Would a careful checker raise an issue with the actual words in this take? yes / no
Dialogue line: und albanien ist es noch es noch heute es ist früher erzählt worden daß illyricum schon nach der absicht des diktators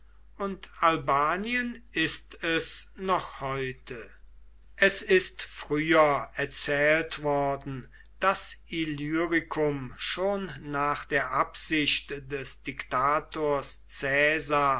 yes